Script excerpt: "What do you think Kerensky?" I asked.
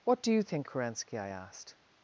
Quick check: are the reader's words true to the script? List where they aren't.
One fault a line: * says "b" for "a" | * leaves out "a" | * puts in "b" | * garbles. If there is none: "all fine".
all fine